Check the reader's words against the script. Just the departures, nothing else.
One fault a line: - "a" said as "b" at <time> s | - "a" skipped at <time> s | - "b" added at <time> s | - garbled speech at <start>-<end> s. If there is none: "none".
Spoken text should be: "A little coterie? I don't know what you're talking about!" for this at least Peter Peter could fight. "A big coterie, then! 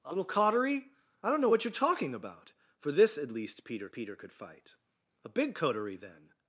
none